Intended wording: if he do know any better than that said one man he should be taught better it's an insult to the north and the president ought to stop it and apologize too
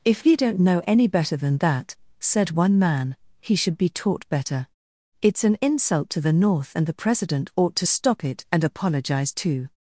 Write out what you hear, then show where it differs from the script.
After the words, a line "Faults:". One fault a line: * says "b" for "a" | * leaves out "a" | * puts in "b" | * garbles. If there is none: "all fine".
if he don't know any better than that said one man he should be taught better it's an insult to the north and the president ought to stop it and apologize too
Faults:
* says "don't" for "do"